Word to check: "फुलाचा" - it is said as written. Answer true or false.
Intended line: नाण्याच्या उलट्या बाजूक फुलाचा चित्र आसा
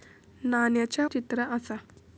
false